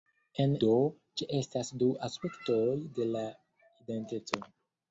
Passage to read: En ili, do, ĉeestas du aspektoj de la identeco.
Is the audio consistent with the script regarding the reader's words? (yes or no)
no